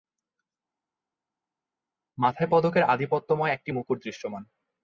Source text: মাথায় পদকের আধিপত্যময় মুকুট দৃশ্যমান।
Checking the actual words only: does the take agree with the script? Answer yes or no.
no